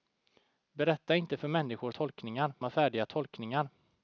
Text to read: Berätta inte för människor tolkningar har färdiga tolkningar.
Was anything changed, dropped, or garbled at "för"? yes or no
no